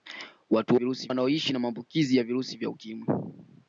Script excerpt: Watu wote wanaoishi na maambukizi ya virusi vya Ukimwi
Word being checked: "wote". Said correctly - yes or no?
no